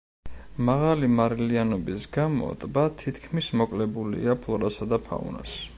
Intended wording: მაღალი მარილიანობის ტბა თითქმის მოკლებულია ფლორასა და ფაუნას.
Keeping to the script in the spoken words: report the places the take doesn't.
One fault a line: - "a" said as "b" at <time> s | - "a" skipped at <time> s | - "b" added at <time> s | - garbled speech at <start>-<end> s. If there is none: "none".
- "გამო" added at 2.2 s